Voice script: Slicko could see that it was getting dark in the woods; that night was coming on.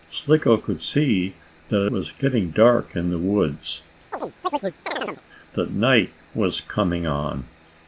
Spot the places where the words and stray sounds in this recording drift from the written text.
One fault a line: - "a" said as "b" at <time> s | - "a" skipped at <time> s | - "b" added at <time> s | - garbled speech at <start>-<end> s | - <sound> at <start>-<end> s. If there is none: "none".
- "it" skipped at 1.9 s
- chirp at 4.1-5.2 s